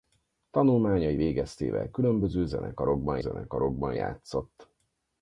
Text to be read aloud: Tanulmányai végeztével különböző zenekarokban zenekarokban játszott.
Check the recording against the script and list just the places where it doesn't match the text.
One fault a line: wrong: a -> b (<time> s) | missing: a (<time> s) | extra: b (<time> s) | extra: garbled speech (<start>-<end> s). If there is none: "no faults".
no faults